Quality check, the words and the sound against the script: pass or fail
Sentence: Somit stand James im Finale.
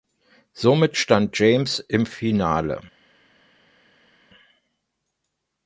pass